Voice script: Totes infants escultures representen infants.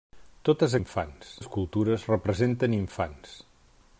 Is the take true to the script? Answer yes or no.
yes